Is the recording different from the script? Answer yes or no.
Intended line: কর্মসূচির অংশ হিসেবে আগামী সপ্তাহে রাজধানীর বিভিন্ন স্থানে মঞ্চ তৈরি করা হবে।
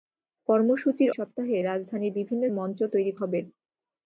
yes